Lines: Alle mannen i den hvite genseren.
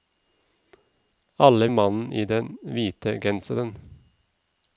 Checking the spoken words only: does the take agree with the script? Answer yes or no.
yes